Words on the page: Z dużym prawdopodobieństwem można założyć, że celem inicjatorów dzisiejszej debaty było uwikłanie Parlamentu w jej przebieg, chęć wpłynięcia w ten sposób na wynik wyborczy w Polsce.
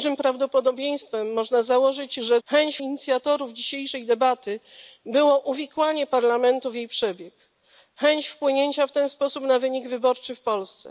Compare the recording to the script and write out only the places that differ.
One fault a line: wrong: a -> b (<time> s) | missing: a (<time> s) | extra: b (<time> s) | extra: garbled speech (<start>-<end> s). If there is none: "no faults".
wrong: celem -> chęć (2.4 s)